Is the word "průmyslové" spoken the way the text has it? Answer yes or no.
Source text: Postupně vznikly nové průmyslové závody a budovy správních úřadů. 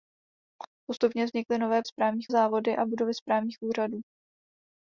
no